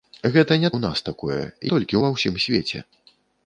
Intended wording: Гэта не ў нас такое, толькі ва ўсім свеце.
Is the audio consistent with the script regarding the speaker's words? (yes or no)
yes